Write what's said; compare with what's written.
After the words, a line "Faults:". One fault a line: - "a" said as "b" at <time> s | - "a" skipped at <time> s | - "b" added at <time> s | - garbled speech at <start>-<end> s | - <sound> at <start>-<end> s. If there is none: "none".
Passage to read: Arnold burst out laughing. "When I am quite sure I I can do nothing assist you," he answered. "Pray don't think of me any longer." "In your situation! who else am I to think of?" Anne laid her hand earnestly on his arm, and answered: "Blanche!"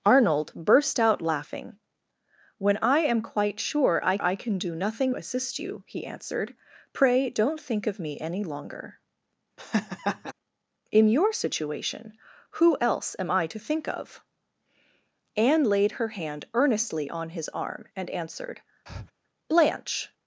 Arnold burst out laughing. "When I am quite sure I I can do nothing assist you," he answered. "Pray don't think of me any longer." "In your situation! who else am I to think of?" Anne laid her hand earnestly on his arm, and answered: "Blanche!"
Faults:
- laugh at 9.6-10.3 s
- breath at 18.9-19.1 s